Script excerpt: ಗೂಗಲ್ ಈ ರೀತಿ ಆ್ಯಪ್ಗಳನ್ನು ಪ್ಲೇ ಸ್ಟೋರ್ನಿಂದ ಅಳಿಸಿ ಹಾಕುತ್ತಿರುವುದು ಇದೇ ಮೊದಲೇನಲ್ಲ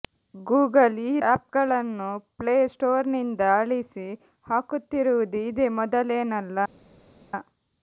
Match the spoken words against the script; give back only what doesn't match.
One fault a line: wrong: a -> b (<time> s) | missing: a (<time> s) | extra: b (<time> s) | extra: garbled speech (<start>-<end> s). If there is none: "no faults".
missing: ರೀತಿ (1.2 s)